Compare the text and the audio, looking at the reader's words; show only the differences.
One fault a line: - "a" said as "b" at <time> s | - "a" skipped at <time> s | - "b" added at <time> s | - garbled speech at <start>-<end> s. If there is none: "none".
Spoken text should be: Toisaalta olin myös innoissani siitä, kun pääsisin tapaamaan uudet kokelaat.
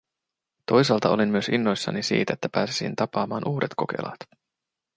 - "kun" said as "että" at 2.3 s